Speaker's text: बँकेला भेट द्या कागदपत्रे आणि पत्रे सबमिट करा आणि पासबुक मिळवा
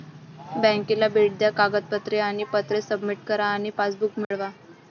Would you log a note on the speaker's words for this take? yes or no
no